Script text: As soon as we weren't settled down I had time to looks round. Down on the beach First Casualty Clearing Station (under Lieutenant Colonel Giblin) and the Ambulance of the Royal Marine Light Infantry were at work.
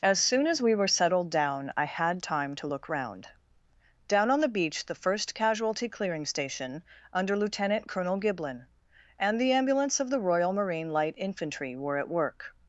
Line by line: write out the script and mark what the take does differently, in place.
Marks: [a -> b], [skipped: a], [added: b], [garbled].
As soon as we [weren't -> were] settled down I had time to [looks -> look] round. Down on the beach [added: the] First Casualty Clearing Station (under Lieutenant Colonel Giblin) and the Ambulance of the Royal Marine Light Infantry were at work.